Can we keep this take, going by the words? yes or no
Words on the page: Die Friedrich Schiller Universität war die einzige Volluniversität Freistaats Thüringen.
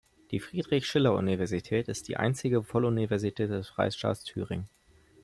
no